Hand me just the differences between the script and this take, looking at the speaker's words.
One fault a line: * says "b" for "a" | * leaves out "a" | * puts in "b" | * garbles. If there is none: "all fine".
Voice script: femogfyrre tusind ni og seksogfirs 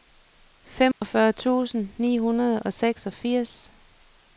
* puts in "hundrede"